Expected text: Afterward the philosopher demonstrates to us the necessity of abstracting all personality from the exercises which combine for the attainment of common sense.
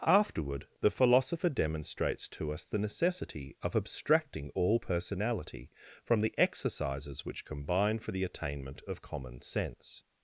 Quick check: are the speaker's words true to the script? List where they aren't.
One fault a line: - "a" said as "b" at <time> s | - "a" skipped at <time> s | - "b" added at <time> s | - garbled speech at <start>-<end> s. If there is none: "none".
none